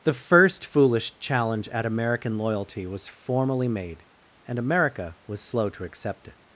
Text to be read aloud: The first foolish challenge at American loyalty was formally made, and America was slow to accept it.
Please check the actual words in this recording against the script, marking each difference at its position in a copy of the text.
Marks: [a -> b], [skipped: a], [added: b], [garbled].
The first foolish challenge at American loyalty was formally made, and America was slow to accept it.